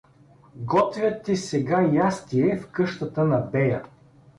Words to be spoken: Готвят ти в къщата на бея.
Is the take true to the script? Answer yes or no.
no